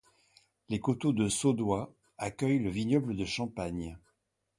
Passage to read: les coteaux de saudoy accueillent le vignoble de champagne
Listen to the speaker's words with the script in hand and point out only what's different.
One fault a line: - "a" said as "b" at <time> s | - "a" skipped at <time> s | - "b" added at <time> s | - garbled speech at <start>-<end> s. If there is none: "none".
none